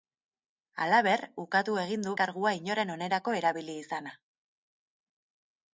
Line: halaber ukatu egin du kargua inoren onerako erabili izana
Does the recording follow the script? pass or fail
pass